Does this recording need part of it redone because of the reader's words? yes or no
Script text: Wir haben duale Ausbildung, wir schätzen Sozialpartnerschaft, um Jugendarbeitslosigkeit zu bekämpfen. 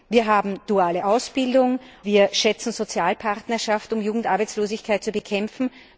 no